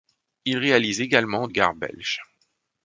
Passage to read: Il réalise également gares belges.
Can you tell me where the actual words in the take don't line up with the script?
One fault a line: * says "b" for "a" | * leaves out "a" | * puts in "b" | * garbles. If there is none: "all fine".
all fine